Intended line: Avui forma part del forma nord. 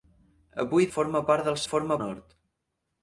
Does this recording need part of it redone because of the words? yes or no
no